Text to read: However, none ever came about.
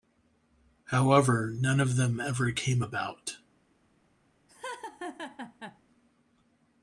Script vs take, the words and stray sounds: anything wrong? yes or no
yes